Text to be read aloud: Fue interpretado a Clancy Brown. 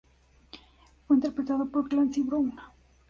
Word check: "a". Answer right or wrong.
wrong